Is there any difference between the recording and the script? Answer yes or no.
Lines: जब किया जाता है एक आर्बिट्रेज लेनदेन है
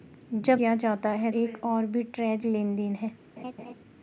no